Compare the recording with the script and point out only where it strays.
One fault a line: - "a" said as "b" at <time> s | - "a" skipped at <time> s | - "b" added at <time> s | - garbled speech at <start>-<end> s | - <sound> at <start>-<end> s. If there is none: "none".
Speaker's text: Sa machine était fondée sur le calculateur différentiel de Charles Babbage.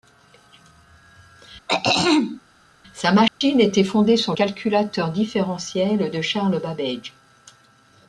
- throat clearing at 1.7-2.4 s
- dropout at 3.3-3.4 s
- "le" skipped at 4.3 s